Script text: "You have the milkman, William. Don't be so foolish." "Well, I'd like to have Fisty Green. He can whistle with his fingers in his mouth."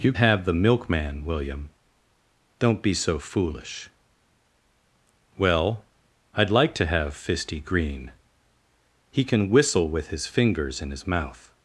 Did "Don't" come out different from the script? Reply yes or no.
no